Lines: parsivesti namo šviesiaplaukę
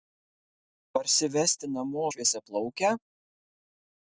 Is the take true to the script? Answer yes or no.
yes